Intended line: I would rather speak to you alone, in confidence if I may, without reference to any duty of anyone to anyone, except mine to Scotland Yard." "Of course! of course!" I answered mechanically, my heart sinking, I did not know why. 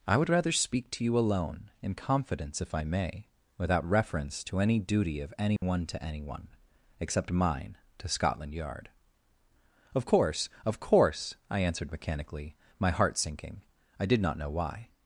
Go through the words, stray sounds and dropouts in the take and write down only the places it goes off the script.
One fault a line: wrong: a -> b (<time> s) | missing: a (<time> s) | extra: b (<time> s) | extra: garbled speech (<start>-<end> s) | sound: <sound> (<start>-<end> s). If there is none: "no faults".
sound: dropout (5.6-5.6 s)